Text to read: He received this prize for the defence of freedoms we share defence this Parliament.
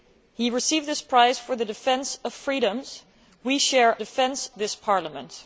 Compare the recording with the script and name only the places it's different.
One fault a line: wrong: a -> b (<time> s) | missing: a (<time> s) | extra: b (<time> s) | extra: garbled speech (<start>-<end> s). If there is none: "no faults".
no faults